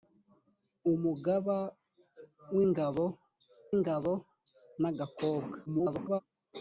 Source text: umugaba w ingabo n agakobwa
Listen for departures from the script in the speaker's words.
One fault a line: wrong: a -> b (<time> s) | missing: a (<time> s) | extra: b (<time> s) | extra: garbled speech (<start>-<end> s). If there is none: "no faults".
extra: ingabo (3.7 s)
extra: garbled speech (5.7-6.2 s)